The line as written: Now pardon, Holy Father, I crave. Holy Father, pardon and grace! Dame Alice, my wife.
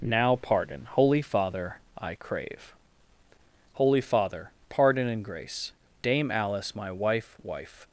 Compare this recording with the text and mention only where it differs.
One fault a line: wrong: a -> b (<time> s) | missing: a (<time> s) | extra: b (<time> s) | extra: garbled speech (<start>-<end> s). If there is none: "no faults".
extra: wife (7.4 s)